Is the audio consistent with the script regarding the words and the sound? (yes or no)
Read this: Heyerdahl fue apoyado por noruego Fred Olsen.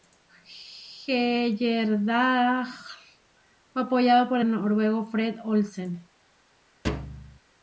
no